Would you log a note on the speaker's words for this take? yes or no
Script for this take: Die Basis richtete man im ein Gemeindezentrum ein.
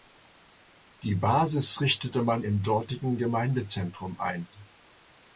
yes